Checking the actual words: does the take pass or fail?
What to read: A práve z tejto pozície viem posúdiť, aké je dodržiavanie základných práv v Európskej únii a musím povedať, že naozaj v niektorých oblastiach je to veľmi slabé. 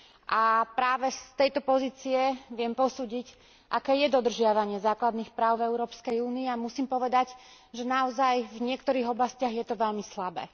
pass